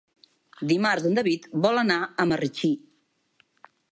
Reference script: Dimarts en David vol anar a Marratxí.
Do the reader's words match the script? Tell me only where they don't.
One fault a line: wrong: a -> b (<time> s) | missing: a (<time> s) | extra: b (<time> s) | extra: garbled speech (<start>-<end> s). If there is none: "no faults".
no faults